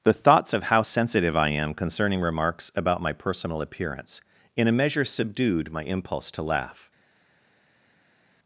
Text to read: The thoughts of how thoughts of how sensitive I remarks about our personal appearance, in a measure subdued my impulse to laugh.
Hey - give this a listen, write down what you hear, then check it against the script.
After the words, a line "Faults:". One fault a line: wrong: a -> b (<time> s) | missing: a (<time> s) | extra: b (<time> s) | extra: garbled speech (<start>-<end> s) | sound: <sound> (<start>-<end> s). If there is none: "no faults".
The thoughts of how sensitive I am concerning remarks about my personal appearance, in a measure subdued my impulse to laugh.
Faults:
wrong: thoughts of how sensitive I -> sensitive I am concerning (0.8 s)
wrong: our -> my (3.0 s)